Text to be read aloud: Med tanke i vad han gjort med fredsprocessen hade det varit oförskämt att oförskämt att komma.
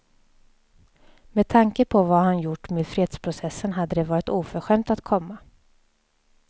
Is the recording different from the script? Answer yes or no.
yes